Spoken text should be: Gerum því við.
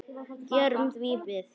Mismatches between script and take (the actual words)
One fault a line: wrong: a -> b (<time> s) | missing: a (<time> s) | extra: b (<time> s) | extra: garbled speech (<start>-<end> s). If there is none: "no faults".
no faults